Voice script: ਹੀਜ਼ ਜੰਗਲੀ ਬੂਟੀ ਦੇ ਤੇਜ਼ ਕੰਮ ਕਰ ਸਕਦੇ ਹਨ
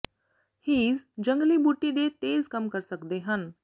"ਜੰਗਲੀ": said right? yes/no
yes